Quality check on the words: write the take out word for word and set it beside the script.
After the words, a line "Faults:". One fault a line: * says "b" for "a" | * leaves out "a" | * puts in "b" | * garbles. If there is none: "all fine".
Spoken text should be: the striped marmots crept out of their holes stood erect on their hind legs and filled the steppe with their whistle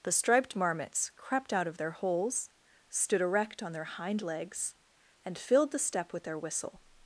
the striped marmots crept out of their holes stood erect on their hind legs and filled the steppe with their whistle
Faults:
all fine